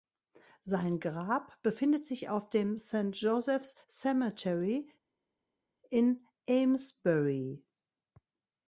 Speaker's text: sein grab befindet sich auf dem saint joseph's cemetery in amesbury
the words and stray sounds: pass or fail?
pass